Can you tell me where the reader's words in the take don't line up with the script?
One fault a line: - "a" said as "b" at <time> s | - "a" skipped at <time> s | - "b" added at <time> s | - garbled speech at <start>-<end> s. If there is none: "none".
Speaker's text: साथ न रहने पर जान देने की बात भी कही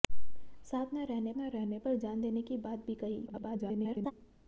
- "न रहने" added at 1.4 s
- garbled speech at 3.3-4.1 s